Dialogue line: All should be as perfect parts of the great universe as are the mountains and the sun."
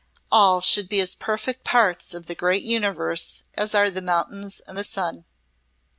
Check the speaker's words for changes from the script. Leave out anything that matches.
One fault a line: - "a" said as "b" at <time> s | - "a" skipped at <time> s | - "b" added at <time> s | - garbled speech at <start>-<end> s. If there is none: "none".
none